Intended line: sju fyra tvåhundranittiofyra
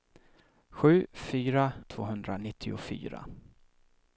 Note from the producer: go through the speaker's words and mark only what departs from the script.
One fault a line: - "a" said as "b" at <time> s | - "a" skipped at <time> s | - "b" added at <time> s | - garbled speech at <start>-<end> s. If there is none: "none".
none